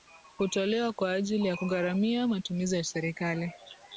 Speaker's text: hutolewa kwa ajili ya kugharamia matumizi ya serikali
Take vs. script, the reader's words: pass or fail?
pass